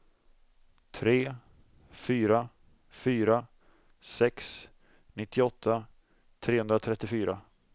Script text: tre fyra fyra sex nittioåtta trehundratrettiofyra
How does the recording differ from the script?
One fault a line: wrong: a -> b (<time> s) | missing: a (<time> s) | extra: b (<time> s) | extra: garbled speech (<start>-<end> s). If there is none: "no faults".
no faults